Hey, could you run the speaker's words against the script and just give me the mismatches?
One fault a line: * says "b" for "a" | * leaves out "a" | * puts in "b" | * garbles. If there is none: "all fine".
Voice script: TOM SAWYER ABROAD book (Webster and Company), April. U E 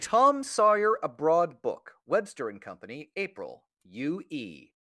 all fine